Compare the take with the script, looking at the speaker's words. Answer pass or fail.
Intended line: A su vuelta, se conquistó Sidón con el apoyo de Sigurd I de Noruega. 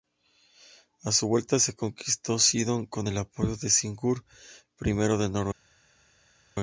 pass